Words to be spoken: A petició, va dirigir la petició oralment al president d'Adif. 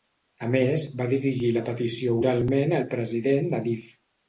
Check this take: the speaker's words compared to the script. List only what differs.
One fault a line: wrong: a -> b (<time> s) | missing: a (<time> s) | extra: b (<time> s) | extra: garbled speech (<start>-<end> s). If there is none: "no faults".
wrong: petició -> més (0.6 s)